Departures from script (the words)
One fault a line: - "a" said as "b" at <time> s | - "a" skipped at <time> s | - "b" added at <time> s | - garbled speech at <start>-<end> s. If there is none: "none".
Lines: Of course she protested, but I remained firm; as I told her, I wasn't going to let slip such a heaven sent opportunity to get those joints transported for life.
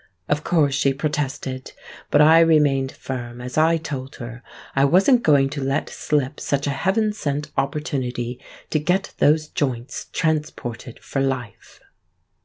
none